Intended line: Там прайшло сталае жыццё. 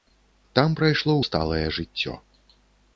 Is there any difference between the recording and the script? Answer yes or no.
no